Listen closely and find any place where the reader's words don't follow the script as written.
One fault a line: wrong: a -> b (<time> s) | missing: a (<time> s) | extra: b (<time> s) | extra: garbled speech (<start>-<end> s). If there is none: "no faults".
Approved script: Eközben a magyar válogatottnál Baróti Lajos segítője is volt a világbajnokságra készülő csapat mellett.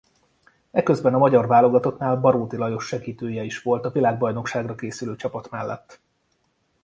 no faults